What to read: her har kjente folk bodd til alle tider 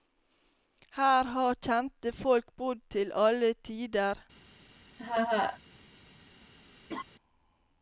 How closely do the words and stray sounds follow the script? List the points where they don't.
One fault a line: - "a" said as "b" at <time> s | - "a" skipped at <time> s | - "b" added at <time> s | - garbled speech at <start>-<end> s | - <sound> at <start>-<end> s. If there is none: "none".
- laugh at 5.0-5.6 s
- laugh at 6.9-7.0 s